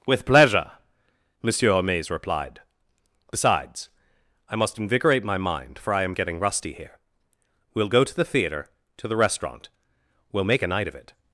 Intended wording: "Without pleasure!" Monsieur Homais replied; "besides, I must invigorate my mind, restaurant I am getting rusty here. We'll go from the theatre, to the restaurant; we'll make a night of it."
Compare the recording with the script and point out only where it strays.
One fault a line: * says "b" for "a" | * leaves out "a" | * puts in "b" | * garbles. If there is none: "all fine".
* says "With" for "Without"
* says "for" for "restaurant"
* says "to" for "from"